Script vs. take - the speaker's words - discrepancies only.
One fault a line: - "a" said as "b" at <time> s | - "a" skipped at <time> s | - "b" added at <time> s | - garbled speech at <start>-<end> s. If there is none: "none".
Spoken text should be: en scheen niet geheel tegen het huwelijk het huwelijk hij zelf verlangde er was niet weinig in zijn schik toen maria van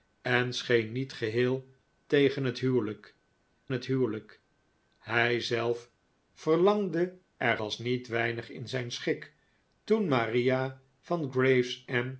none